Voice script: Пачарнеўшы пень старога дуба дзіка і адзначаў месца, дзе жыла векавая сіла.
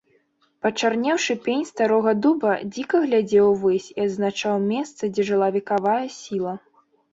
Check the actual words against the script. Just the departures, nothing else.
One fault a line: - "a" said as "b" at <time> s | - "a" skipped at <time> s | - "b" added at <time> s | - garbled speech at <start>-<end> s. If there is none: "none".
- "глядзеў увысь" added at 3.0 s